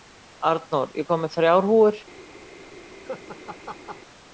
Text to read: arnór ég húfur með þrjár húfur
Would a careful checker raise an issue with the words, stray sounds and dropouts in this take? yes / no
yes